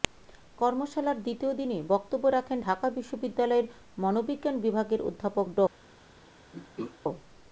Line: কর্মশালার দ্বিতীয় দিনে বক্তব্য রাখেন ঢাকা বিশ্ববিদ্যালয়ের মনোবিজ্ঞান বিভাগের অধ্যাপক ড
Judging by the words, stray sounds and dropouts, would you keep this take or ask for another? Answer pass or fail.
fail